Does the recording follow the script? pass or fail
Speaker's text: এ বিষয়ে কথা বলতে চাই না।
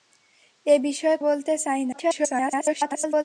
fail